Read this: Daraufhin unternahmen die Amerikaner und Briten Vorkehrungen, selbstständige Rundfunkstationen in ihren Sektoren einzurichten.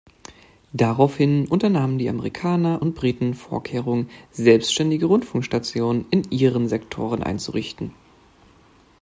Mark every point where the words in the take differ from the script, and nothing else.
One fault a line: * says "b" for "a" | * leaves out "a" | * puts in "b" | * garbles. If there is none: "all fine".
all fine